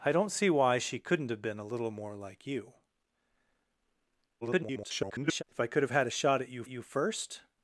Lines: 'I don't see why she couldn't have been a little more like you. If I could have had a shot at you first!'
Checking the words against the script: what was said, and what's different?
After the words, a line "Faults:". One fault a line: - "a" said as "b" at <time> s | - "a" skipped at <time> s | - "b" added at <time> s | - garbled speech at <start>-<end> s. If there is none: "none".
'I don't see why she couldn't have been a little more like you. [garbled] If I could have had a shot at you you first!'
Faults:
- garbled speech at 4.4-5.4 s
- "you" added at 6.7 s